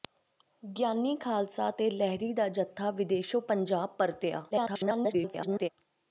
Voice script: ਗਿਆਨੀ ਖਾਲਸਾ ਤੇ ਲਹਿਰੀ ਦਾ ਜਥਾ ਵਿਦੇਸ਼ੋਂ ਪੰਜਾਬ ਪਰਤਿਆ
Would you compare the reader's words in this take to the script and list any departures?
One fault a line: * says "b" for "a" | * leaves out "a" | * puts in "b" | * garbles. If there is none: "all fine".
* garbles